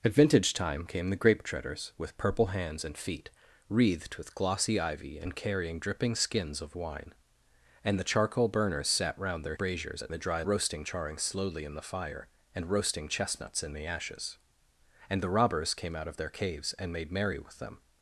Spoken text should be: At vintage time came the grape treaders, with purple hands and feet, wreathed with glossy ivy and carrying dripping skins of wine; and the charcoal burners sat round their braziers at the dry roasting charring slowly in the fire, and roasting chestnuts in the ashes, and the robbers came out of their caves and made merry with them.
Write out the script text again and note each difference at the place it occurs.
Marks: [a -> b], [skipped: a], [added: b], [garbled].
At vintage time came the grape treaders, with purple hands and feet, wreathed with glossy ivy and carrying dripping skins of wine; and the charcoal burners sat round their braziers at the dry roasting charring slowly in the fire, and roasting chestnuts in the ashes, and the robbers came out of their caves and made merry with them.